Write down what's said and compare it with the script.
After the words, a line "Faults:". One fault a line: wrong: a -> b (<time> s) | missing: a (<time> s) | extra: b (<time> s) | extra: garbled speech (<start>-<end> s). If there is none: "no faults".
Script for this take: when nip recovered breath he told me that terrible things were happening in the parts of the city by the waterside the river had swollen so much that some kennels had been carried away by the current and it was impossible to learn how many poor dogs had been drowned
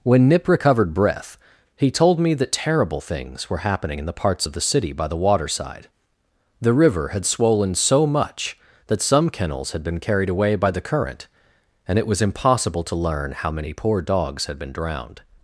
when nip recovered breath he told me that terrible things were happening in the parts of the city by the waterside the river had swollen so much that some kennels had been carried away by the current and it was impossible to learn how many poor dogs had been drowned
Faults:
no faults